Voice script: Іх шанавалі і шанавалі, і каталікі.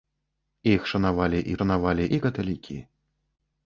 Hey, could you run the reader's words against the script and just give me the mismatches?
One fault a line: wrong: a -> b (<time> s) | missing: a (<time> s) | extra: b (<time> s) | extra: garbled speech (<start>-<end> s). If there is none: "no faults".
no faults